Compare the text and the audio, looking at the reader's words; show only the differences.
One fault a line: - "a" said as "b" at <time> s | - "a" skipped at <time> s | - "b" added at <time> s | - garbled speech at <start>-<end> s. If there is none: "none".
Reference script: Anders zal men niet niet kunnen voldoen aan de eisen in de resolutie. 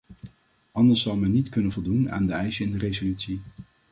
- "niet" skipped at 1.5 s